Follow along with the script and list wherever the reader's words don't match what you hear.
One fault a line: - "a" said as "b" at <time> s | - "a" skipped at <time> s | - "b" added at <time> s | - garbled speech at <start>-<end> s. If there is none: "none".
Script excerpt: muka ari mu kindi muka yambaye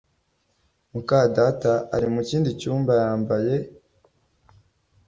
- "data" added at 1.4 s
- "muka" said as "cyumba" at 2.6 s